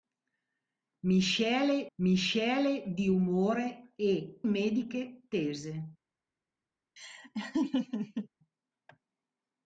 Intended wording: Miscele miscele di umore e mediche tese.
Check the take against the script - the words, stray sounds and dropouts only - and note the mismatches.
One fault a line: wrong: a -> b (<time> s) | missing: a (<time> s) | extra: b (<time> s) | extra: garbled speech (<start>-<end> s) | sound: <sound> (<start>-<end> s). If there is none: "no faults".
sound: laugh (7.0-8.3 s)